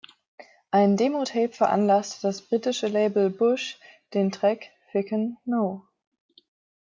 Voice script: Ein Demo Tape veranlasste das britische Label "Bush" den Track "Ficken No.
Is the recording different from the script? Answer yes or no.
no